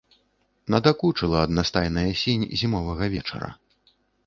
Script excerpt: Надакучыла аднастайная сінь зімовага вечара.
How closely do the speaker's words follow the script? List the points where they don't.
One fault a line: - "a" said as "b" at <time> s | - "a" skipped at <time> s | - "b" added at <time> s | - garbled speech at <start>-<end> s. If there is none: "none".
none